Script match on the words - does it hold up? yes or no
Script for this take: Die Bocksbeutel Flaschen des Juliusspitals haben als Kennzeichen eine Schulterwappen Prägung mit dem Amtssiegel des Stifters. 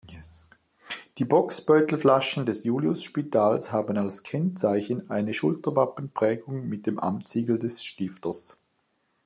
yes